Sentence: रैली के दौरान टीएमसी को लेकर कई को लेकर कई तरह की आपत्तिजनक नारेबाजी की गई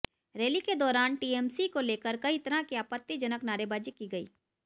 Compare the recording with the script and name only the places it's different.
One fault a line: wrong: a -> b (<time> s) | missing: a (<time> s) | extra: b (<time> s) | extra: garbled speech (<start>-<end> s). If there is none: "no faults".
missing: को लेकर कई (2.4 s)